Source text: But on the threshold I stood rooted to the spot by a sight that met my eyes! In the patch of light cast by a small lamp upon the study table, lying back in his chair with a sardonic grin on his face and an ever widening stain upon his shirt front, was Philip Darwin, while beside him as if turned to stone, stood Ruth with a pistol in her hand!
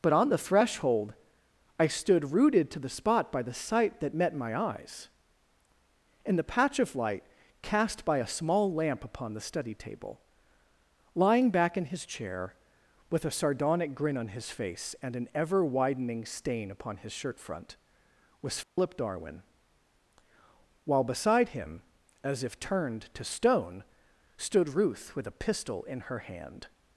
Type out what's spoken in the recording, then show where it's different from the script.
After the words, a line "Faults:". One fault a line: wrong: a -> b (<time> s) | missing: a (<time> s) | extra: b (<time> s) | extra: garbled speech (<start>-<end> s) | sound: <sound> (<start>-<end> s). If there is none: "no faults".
But on the threshold I stood rooted to the spot by the sight that met my eyes! In the patch of light cast by a small lamp upon the study table, lying back in his chair with a sardonic grin on his face and an ever widening stain upon his shirt front, was Philip Darwin, while beside him as if turned to stone, stood Ruth with a pistol in her hand!
Faults:
wrong: a -> the (3.4 s)
sound: dropout (18.6-18.8 s)